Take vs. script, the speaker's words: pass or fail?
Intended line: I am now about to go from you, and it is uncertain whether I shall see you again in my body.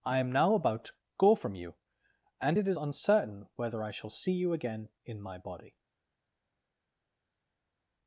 pass